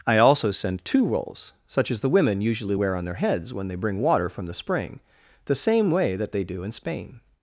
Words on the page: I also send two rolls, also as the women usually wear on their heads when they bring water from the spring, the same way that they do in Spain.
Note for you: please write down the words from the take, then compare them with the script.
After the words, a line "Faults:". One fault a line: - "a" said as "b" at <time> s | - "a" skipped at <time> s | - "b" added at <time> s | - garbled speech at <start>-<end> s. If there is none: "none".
I also send two rolls, such as the women usually wear on their heads when they bring water from the spring, the same way that they do in Spain.
Faults:
- "also" said as "such" at 1.7 s